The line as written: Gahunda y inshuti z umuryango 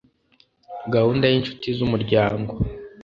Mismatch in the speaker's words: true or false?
false